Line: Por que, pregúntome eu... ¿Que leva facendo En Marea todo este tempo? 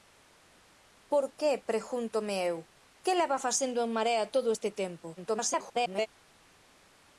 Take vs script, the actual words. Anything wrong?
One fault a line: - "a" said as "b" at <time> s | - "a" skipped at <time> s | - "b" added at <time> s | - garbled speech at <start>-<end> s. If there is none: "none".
- garbled speech at 5.2-6.1 s